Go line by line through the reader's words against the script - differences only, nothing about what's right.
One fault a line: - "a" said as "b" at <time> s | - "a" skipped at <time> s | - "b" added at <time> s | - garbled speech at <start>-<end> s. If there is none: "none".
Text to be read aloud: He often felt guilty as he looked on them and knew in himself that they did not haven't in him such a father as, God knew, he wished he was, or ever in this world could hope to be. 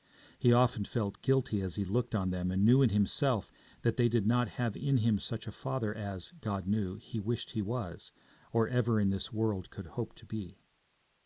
- "haven't" said as "have" at 4.5 s